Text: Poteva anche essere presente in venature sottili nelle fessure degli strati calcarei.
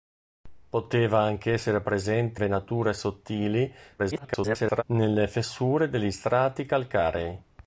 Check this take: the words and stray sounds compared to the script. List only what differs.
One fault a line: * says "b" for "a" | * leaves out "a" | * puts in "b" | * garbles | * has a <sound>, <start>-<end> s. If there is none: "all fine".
* leaves out "in"
* garbles